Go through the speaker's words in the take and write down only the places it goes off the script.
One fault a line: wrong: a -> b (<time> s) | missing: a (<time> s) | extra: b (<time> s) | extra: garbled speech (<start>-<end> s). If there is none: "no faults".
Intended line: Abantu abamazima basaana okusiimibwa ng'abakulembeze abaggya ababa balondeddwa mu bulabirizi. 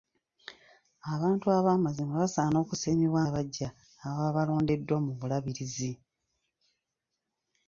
missing: ng'abakulembeze (3.2 s)